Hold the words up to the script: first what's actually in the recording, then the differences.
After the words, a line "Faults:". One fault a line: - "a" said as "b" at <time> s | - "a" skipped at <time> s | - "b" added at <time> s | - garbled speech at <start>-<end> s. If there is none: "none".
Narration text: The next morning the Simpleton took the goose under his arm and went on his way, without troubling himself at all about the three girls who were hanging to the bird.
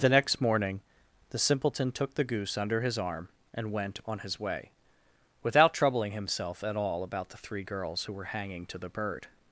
The next morning the Simpleton took the goose under his arm and went on his way, without troubling himself at all about the three girls who were hanging to the bird.
Faults:
none